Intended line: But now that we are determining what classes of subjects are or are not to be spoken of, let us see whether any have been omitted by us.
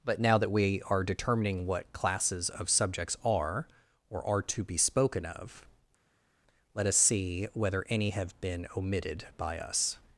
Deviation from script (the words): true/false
true